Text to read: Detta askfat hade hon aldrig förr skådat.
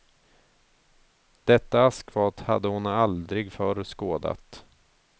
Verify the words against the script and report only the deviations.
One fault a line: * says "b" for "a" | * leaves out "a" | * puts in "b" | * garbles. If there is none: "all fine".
all fine